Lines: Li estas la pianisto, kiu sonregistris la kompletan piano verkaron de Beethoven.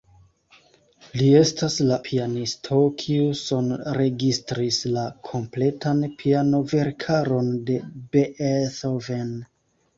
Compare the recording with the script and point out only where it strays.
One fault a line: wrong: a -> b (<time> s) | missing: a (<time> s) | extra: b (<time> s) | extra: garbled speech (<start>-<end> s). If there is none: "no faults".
no faults